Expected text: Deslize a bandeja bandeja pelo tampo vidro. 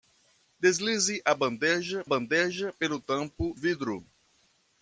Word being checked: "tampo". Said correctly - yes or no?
yes